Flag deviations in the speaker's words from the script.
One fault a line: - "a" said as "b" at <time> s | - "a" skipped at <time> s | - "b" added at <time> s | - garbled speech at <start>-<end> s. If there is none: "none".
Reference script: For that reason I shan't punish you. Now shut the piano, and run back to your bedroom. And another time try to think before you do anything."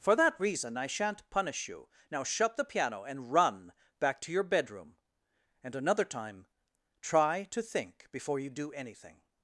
none